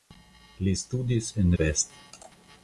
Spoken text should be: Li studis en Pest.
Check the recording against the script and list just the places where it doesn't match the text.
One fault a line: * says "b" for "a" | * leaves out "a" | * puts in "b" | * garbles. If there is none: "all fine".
all fine